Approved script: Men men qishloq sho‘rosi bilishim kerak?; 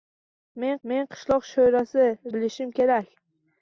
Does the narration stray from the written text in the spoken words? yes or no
no